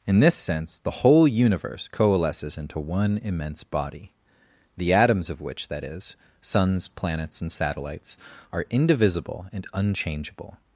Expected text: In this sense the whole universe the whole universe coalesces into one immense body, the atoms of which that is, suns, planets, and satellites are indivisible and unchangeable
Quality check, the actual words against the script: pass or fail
fail